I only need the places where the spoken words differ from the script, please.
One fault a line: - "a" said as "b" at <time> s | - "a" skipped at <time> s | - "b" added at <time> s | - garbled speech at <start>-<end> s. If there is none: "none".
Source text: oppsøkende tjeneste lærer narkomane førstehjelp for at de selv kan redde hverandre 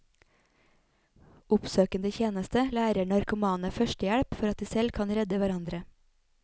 none